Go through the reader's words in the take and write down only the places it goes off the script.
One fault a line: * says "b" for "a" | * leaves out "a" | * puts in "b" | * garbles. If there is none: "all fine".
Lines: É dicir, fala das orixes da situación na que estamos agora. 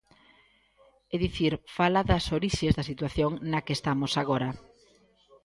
all fine